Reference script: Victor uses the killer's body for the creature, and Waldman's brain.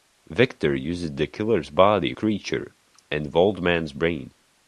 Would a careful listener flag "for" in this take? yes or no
yes